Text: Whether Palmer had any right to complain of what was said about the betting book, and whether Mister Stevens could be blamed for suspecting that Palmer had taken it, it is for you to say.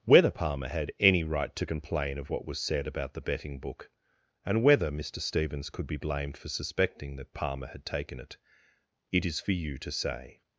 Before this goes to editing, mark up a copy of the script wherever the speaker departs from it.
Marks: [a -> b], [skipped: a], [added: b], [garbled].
Whether Palmer had any right to complain of what was said about the betting book, and whether Mister Stevens could be blamed for suspecting that Palmer had taken it, it is for you to say.